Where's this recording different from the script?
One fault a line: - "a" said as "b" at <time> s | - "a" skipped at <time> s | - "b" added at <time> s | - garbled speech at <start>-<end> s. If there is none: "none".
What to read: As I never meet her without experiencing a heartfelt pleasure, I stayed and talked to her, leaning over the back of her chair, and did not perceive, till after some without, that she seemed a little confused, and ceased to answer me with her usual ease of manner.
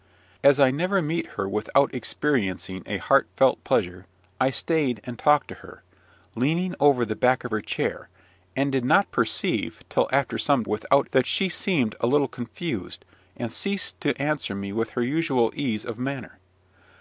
none